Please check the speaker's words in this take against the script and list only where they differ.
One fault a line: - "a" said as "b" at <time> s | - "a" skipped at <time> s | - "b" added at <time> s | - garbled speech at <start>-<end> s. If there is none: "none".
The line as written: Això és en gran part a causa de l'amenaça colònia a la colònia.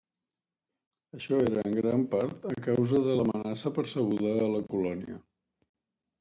- "és" said as "era" at 1.5 s
- "colònia" said as "percebuda" at 3.8 s